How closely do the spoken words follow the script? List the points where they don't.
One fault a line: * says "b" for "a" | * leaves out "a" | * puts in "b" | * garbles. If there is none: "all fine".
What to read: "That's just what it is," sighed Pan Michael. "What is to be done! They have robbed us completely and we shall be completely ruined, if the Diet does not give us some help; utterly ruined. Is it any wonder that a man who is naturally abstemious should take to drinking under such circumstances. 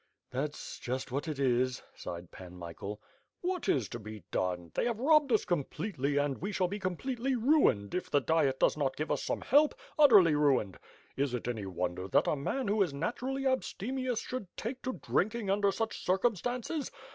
all fine